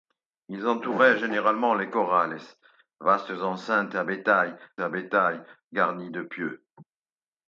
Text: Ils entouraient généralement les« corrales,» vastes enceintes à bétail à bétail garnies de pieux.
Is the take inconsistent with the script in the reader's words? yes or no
no